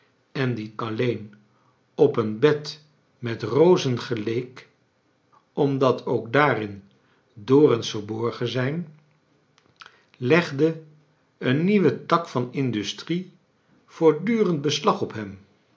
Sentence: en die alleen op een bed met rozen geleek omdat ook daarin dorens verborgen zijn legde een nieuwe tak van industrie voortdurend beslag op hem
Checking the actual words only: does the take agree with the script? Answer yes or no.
yes